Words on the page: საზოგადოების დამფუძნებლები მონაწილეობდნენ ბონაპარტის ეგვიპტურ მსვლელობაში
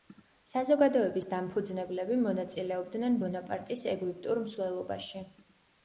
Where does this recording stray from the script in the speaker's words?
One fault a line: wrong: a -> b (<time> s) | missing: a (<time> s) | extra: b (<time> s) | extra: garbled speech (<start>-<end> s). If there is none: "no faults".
no faults